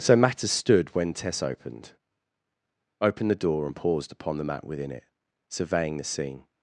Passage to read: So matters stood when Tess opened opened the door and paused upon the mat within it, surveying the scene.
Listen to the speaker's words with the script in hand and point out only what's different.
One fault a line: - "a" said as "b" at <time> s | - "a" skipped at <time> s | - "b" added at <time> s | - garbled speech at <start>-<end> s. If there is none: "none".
none